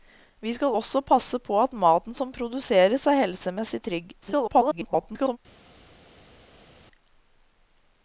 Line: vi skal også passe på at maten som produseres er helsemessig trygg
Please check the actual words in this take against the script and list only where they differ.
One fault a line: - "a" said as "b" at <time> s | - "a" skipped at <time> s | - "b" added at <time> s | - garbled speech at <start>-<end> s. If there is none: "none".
- garbled speech at 4.2-5.4 s